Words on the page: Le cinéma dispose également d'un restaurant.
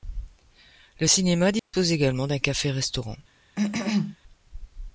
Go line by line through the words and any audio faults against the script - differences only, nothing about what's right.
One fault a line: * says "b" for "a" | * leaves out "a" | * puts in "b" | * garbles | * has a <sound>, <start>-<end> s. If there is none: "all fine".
* has a dropout, 1.6-1.7 s
* puts in "café"
* has a cough, 3.6-4.2 s